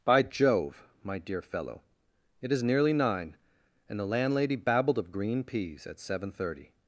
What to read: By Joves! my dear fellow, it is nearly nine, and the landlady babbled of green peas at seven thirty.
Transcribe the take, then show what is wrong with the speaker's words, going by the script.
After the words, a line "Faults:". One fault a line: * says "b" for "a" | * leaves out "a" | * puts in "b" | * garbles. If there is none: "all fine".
By Jove! my dear fellow, it is nearly nine, and the landlady babbled of green peas at seven thirty.
Faults:
* says "Jove" for "Joves"